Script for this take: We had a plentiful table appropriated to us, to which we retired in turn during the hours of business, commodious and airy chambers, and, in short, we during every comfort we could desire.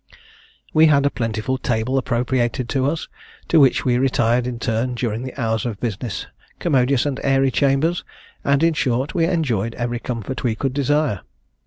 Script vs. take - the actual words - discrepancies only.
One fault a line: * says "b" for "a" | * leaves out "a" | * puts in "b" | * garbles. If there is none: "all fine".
* says "enjoyed" for "during"